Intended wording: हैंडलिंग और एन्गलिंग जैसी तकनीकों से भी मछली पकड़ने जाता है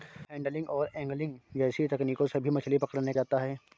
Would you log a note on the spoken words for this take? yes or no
no